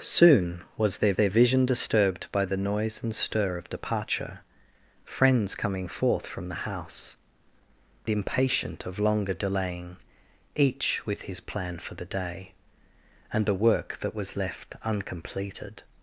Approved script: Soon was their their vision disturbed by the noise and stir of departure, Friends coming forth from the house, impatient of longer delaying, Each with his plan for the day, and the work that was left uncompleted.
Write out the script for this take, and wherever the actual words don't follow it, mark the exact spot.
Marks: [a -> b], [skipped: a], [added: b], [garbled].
Soon was their their vision disturbed by the noise and stir of departure, Friends coming forth from the house, impatient of longer delaying, Each with his plan for the day, and the work that was left uncompleted.